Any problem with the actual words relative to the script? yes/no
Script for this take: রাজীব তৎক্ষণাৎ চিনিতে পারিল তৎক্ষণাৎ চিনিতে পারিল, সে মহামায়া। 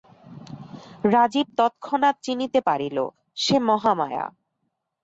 yes